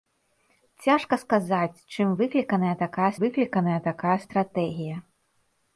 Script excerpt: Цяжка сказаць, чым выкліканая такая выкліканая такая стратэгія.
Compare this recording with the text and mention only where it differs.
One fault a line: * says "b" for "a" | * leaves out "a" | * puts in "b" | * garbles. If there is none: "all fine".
all fine